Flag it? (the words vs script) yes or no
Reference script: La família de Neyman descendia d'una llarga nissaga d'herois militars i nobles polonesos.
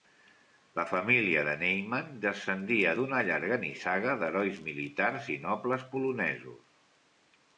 no